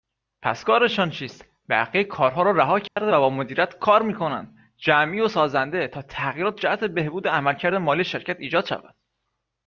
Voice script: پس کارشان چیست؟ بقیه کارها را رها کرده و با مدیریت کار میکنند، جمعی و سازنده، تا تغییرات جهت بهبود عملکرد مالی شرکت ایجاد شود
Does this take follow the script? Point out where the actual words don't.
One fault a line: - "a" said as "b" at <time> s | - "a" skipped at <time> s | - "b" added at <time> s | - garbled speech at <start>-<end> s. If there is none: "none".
none